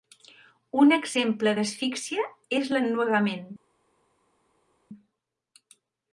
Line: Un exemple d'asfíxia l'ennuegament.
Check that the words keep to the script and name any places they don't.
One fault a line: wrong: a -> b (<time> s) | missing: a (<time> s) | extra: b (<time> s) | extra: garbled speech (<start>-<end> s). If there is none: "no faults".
extra: és (2.6 s)